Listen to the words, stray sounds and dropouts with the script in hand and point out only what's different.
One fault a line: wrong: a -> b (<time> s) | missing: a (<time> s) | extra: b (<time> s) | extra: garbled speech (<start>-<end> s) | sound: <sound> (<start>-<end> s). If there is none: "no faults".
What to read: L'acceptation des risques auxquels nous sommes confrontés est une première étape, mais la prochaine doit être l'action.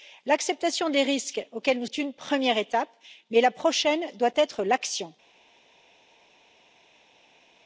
missing: sommes confrontés (1.9 s)